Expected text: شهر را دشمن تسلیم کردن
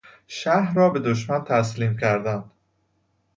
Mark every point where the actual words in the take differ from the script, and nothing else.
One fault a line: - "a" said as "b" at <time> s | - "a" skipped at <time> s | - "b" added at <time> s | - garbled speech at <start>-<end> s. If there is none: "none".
- "به" added at 0.9 s